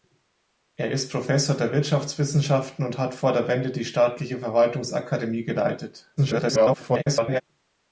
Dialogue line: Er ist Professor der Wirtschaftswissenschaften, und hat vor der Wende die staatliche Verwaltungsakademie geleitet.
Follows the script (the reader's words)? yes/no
no